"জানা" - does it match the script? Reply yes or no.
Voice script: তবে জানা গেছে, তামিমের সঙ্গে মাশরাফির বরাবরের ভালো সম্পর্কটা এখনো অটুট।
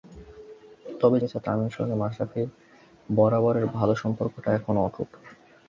no